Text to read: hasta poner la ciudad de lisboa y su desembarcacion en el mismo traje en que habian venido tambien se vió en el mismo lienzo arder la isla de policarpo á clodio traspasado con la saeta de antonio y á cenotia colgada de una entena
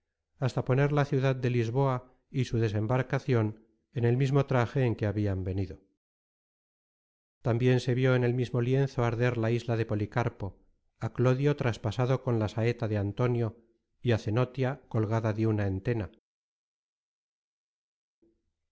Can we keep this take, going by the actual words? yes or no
yes